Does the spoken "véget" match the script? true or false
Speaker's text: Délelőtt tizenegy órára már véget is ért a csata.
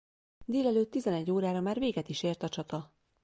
true